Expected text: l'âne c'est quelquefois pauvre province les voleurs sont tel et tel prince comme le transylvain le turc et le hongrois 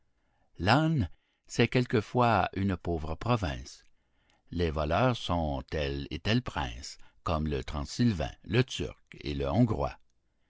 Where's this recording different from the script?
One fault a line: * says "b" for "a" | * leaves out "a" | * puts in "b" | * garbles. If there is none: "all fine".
* puts in "une"